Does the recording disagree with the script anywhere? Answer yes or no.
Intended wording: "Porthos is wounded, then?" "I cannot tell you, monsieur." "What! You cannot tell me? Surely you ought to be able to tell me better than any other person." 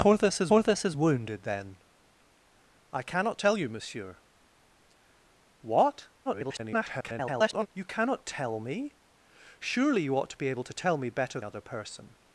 yes